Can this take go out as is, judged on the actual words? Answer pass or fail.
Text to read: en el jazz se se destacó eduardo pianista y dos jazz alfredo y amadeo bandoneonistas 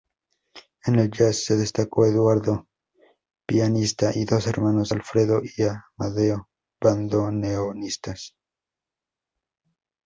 fail